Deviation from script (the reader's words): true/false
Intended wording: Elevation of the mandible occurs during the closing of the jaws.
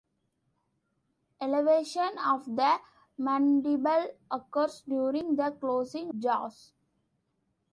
true